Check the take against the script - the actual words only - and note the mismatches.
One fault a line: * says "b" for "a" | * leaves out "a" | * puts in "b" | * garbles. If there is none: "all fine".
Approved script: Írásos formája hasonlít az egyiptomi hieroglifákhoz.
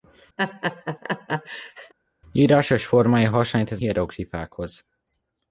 * leaves out "egyiptomi"